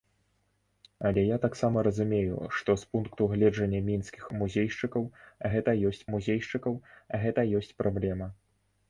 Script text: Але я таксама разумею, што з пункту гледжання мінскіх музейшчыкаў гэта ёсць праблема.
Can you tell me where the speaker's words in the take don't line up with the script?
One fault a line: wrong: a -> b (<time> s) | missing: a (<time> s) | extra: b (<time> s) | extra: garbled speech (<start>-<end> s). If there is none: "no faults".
extra: музейшчыкаў гэта ёсць (6.2 s)